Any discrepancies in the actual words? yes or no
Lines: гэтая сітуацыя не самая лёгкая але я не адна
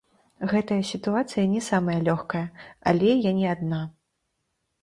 no